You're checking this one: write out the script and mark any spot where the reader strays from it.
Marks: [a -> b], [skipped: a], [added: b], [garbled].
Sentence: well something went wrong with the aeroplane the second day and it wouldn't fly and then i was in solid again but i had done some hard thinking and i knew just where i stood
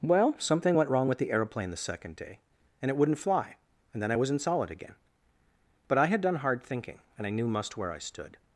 well something went wrong with the aeroplane the second day and it wouldn't fly and then i was in solid again but i had done [skipped: some] hard thinking and i knew [just -> must] where i stood